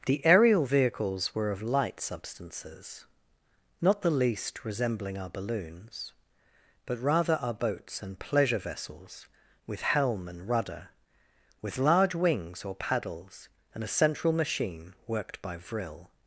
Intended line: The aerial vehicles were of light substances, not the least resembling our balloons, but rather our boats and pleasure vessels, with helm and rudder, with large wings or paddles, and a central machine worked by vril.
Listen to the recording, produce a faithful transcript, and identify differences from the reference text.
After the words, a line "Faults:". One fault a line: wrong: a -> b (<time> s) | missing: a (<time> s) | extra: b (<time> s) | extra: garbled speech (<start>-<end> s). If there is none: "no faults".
The aerial vehicles were of light substances, not the least resembling our balloons, but rather our boats and pleasure vessels, with helm and rudder, with large wings or paddles, and a central machine worked by vril.
Faults:
no faults